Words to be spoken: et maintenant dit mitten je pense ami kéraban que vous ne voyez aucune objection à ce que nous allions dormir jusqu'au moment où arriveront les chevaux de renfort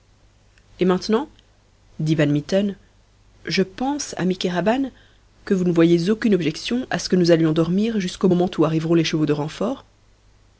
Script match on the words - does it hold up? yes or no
no